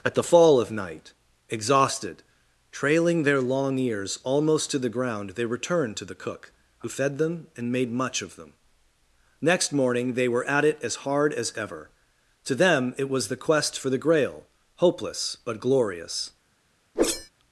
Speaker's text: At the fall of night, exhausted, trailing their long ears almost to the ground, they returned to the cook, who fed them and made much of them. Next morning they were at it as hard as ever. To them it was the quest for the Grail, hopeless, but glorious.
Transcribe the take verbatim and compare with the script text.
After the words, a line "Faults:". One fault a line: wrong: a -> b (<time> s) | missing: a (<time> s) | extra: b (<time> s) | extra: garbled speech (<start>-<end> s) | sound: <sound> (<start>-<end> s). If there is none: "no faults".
At the fall of night, exhausted, trailing their long ears almost to the ground, they returned to the cook, who fed them and made much of them. Next morning they were at it as hard as ever. To them it was the quest for the Grail, hopeless, but glorious.
Faults:
sound: whoosh (16.9-17.3 s)